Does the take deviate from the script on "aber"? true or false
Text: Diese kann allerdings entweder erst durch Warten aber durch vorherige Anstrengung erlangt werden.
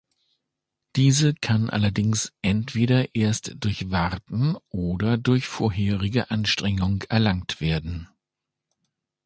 true